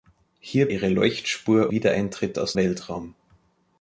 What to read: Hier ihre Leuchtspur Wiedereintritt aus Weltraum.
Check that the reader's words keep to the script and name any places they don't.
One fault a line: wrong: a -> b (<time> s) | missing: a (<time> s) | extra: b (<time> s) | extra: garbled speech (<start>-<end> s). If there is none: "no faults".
no faults